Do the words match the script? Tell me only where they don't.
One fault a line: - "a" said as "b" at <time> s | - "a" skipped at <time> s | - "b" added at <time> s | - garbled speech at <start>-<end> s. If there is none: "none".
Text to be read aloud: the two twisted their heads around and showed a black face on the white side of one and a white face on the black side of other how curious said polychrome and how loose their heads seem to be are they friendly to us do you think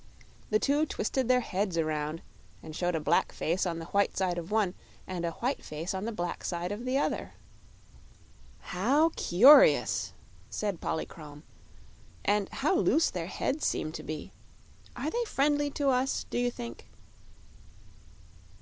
- "the" added at 6.9 s